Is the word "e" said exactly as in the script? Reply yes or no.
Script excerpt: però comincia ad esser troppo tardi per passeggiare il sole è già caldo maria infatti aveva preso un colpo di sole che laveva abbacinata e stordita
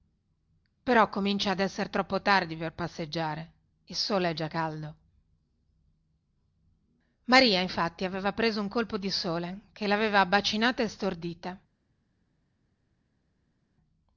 yes